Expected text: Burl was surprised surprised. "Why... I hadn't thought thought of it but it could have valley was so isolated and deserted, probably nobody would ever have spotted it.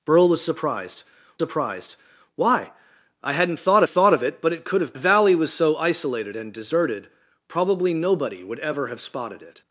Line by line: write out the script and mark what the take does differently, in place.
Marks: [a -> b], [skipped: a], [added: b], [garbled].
Burl was surprised surprised. "Why... I hadn't thought thought of it but it could have valley was so isolated and deserted, probably nobody would ever have spotted it.